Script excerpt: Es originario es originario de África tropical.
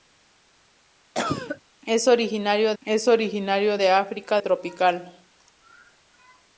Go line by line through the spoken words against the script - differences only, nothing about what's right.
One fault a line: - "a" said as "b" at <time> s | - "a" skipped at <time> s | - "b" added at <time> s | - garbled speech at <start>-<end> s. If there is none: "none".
none